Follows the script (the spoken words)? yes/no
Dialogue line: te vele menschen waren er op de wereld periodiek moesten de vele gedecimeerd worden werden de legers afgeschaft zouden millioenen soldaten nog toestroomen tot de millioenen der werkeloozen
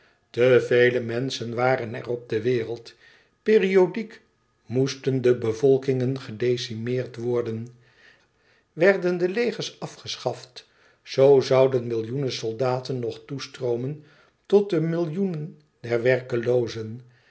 no